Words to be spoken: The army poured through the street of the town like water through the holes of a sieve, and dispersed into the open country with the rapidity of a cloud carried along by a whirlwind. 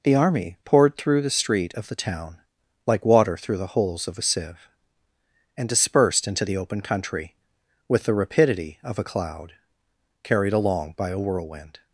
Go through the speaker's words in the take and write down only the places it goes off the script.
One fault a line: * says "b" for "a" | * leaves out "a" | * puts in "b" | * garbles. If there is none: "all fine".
all fine